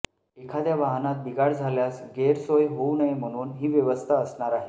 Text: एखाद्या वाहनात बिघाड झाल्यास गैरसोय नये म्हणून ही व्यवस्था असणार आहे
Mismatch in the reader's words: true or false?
true